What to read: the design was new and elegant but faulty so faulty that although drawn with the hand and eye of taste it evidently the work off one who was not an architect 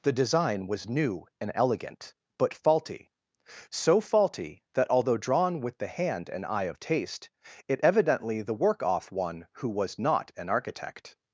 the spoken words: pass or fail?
pass